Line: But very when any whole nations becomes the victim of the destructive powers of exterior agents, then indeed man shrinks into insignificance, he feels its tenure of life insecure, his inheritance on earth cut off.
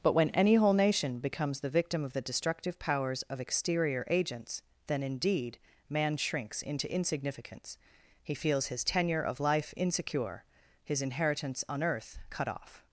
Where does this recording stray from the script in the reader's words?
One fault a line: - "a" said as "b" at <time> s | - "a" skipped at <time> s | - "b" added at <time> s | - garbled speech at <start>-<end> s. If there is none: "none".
- "very" skipped at 0.1 s
- "nations" said as "nation" at 0.7 s
- "its" said as "his" at 8.7 s